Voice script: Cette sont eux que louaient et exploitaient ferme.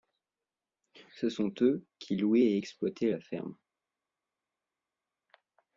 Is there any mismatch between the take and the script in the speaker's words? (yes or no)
yes